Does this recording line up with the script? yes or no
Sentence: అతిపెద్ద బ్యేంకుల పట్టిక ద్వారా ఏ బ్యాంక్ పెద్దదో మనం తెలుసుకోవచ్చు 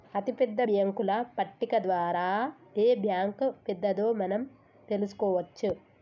yes